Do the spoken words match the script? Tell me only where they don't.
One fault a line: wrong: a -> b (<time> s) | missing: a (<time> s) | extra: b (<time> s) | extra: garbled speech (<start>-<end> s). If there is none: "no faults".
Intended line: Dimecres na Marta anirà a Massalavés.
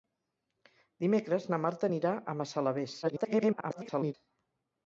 extra: garbled speech (3.0-4.1 s)